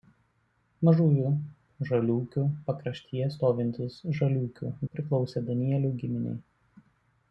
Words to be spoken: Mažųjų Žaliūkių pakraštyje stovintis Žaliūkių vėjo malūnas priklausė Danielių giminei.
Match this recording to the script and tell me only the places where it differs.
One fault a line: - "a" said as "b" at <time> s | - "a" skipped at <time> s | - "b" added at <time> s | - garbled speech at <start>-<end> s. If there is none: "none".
- "vėjo malūnas" skipped at 4.7 s